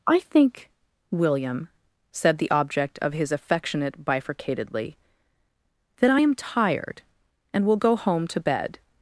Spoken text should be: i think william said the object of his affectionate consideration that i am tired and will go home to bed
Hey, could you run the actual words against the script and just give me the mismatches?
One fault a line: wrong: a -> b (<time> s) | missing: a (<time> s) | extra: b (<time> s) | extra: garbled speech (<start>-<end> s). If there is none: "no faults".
wrong: consideration -> bifurcatedly (4.0 s)